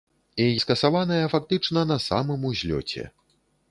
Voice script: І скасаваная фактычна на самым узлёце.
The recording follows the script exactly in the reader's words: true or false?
true